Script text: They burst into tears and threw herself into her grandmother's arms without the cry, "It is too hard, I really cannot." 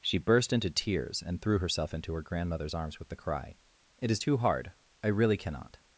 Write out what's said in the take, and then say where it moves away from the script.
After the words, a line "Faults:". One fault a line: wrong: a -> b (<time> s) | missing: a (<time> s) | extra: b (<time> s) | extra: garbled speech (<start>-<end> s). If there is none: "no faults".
She burst into tears and threw herself into her grandmother's arms with the cry, "It is too hard, I really cannot."
Faults:
wrong: They -> She (0.0 s)
wrong: without -> with (3.0 s)